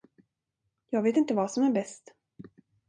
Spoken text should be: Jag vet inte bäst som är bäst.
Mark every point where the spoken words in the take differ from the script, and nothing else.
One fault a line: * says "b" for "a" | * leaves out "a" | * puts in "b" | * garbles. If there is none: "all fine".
* says "vad" for "bäst"